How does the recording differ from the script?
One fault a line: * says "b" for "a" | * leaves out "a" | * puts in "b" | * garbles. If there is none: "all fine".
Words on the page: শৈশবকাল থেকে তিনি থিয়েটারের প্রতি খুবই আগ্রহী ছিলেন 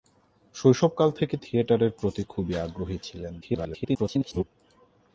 * leaves out "তিনি"
* garbles